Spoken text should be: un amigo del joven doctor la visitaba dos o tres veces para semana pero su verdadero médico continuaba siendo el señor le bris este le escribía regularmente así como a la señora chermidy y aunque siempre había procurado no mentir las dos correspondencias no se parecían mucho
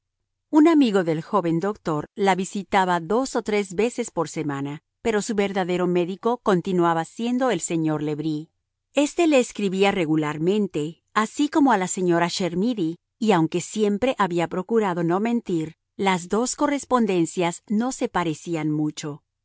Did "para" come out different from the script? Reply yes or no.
yes